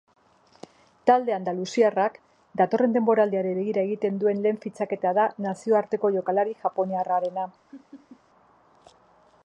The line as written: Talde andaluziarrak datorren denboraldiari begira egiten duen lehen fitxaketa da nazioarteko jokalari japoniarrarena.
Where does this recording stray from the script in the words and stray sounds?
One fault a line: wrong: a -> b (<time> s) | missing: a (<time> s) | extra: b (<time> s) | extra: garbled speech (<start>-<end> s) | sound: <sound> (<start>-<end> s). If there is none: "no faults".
sound: laugh (7.7-8.2 s)